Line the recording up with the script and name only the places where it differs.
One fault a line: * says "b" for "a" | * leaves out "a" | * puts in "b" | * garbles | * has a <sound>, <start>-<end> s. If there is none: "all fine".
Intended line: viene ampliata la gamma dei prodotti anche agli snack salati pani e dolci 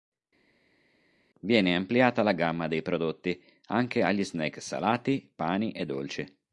all fine